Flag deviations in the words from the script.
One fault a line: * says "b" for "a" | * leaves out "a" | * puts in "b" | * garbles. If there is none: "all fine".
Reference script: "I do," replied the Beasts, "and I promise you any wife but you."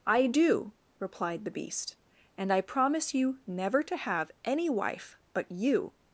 * says "Beast" for "Beasts"
* puts in "never to have"